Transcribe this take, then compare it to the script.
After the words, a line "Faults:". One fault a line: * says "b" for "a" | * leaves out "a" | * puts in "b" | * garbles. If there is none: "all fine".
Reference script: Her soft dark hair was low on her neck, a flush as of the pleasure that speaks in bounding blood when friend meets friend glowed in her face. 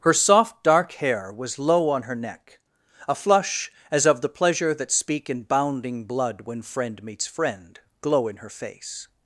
Her soft dark hair was low on her neck, a flush as of the pleasure that speak in bounding blood when friend meets friend glow in her face.
Faults:
* says "speak" for "speaks"
* says "glow" for "glowed"